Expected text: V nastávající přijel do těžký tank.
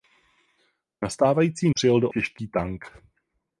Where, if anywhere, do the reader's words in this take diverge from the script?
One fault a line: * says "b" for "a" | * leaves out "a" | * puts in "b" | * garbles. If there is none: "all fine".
all fine